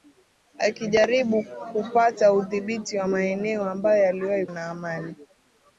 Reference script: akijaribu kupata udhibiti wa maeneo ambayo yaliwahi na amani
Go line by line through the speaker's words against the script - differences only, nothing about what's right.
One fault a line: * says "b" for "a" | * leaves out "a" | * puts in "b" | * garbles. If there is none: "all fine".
all fine